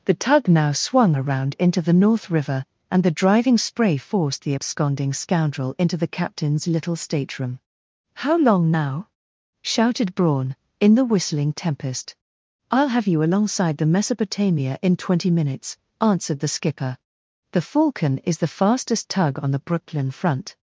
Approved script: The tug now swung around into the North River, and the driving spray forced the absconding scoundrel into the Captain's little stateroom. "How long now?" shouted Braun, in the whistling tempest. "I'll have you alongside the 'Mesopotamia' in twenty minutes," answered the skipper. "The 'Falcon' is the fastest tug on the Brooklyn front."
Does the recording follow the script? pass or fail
pass